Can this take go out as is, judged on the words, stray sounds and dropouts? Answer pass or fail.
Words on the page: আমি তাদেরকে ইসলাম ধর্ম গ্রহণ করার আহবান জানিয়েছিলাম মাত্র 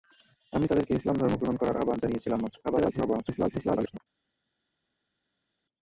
fail